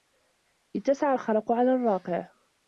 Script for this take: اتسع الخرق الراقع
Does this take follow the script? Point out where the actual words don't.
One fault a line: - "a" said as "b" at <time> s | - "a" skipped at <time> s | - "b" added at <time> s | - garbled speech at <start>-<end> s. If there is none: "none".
- "على" added at 1.5 s